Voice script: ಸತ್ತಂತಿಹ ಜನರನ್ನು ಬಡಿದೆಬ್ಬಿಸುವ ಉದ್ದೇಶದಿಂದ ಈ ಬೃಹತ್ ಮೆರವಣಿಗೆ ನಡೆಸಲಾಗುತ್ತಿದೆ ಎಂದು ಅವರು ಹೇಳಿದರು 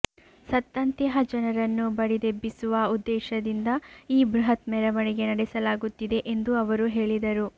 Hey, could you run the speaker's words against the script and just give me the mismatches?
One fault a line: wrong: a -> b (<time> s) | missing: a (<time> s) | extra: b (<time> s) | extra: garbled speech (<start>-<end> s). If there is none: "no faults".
no faults